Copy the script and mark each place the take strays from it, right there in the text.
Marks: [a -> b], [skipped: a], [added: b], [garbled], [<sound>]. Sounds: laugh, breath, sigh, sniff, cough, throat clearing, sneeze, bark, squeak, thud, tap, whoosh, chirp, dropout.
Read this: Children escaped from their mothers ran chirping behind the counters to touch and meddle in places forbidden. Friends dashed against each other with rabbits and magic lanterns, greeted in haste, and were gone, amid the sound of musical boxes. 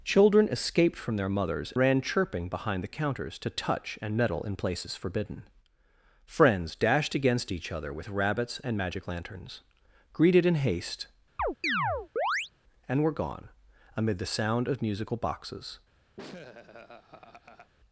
Children escaped from their mothers ran chirping behind the counters to touch and meddle in places forbidden. Friends dashed against each other with rabbits and magic lanterns, greeted in haste, [chirp] and were gone, amid the sound of musical boxes. [laugh]